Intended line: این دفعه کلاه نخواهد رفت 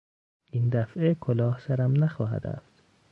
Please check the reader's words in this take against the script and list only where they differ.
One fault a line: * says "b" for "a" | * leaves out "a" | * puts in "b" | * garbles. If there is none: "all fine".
* puts in "سرم"